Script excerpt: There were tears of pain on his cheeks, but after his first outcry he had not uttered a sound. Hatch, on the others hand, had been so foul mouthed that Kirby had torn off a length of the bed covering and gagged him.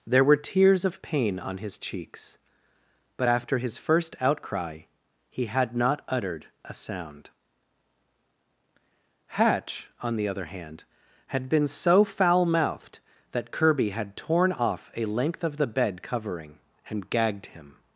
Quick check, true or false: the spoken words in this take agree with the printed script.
false